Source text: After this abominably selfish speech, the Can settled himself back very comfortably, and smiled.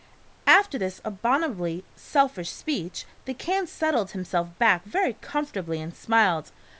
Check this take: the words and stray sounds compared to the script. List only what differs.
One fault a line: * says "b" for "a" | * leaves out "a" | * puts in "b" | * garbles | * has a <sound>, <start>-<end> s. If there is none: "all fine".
all fine